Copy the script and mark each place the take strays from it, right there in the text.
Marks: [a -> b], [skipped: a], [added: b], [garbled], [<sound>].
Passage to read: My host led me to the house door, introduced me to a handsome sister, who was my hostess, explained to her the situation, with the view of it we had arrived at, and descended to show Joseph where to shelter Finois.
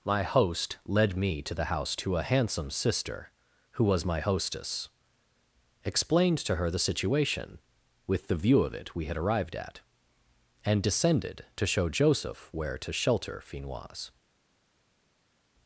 My host led me to the house [skipped: door, introduced me] to a handsome sister, who was my hostess, explained to her the situation, with the view of it we had arrived at, and descended to show Joseph where to shelter Finois.